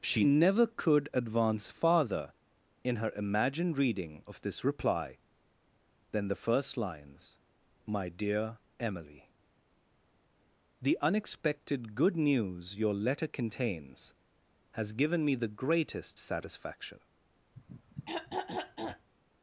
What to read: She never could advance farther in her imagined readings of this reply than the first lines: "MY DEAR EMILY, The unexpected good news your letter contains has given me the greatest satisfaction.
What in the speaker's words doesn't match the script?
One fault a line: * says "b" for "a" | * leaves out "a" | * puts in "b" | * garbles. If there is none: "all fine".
* says "reading" for "readings"